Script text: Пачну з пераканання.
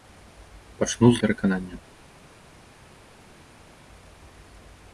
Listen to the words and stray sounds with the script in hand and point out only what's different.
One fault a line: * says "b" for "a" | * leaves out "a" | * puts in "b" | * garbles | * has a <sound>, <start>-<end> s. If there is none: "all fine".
all fine